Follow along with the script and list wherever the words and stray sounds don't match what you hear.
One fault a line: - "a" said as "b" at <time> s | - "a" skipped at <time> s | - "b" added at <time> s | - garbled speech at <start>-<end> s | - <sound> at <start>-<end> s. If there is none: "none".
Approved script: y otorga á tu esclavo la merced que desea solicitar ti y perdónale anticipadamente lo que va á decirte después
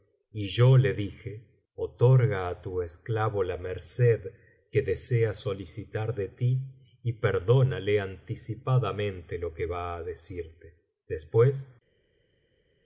- "yo le dije" added at 0.5 s
- "de" added at 6.2 s